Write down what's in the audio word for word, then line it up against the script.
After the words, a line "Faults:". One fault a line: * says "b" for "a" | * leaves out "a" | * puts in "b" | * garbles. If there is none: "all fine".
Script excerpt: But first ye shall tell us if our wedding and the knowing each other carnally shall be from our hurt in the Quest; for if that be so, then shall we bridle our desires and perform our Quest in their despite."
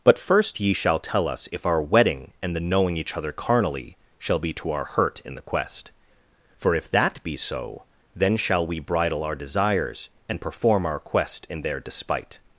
But first ye shall tell us if our wedding and the knowing each other carnally shall be to our hurt in the Quest; for if that be so, then shall we bridle our desires and perform our Quest in their despite."
Faults:
* says "to" for "from"